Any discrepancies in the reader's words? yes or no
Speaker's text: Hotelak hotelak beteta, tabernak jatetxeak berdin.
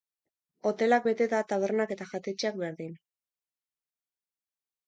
yes